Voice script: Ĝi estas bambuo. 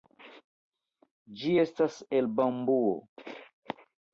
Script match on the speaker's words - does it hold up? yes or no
no